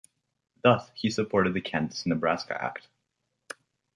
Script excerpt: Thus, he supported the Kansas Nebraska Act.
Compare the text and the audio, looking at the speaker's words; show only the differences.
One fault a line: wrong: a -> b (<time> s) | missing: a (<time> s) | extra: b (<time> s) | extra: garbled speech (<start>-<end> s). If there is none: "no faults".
no faults